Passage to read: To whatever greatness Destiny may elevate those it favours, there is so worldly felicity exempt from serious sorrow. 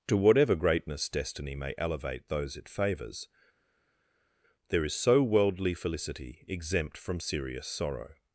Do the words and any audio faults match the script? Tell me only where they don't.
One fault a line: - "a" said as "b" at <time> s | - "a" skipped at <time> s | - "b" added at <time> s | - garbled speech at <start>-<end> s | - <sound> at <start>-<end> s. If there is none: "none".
none